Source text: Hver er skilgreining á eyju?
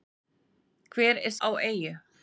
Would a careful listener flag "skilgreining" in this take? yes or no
yes